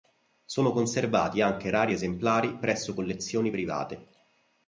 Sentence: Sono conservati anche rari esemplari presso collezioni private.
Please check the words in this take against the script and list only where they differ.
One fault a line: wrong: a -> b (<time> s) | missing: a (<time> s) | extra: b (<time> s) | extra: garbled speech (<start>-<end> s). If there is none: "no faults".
no faults